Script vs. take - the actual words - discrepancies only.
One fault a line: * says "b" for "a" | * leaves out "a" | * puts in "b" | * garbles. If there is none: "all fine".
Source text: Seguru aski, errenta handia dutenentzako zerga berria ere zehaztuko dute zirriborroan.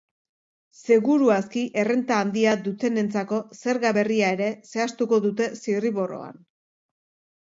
all fine